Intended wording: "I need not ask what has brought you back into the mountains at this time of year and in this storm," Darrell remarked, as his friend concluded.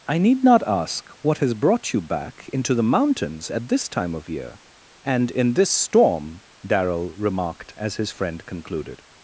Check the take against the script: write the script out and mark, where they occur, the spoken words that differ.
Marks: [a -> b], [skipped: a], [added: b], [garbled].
"I need not ask what has brought you back into the mountains at this time of year and in this storm," Darrell remarked, as his friend concluded.